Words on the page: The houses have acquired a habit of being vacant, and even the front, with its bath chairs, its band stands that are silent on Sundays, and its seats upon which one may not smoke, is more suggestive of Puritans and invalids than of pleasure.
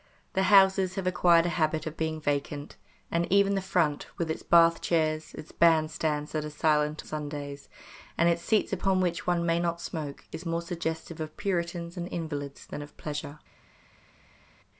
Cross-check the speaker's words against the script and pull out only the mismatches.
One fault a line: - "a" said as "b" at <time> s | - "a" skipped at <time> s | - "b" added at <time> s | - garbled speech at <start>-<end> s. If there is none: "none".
- "on" skipped at 7.0 s